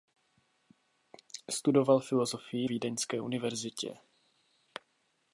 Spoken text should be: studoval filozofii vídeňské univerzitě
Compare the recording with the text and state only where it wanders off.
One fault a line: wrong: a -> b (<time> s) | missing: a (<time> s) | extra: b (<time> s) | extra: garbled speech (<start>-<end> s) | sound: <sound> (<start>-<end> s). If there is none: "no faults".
no faults